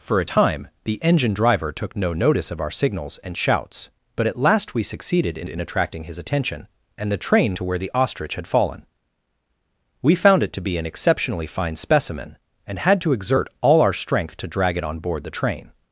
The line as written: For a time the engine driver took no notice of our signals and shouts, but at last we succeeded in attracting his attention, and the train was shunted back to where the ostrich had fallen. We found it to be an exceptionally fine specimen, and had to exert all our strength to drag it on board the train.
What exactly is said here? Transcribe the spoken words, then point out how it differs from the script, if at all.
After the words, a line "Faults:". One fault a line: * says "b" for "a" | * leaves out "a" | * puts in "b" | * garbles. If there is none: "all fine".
For a time the engine driver took no notice of our signals and shouts, but at last we succeeded in in attracting his attention, and the train to where the ostrich had fallen. We found it to be an exceptionally fine specimen, and had to exert all our strength to drag it on board the train.
Faults:
* puts in "in"
* leaves out "was shunted back"